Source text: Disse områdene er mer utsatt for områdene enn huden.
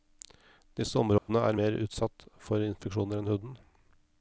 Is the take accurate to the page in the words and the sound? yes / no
no